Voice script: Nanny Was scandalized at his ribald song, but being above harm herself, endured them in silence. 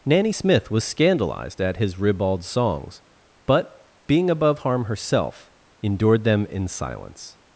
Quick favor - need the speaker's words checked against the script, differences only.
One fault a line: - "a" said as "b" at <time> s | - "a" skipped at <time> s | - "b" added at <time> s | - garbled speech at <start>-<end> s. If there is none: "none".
- "Smith" added at 0.3 s
- "song" said as "songs" at 2.4 s